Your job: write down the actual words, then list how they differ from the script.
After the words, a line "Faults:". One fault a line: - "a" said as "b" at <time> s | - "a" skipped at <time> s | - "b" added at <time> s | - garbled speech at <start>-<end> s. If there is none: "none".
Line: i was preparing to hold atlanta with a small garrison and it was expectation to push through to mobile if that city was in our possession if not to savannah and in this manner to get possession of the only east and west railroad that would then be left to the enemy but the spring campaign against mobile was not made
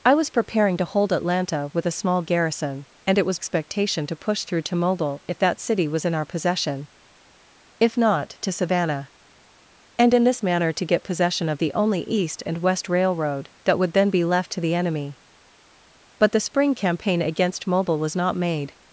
i was preparing to hold atlanta with a small garrison and it was expectation to push through to mobile if that city was in our possession if not to savannah and in this manner to get possession of the only east and west railroad that would then be left to the enemy but the spring campaign against mobile was not made
Faults:
none